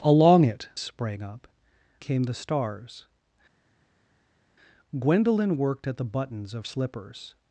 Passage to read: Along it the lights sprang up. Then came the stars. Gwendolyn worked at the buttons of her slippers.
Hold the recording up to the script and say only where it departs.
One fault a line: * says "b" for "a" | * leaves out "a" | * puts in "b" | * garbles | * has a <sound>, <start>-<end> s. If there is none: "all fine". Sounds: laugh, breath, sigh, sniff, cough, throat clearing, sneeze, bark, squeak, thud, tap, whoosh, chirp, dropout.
* leaves out "the lights"
* leaves out "Then"
* leaves out "her"